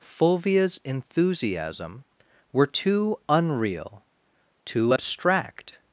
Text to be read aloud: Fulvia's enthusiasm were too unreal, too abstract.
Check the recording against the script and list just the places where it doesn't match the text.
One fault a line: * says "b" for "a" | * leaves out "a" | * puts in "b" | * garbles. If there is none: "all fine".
all fine